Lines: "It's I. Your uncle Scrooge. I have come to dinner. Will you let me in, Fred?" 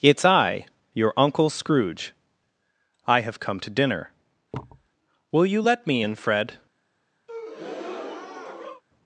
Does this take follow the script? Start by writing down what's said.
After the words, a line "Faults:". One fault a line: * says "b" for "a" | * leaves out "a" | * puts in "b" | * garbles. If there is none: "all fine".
"It's I. Your uncle Scrooge. I have come to dinner. Will you let me in, Fred?"
Faults:
all fine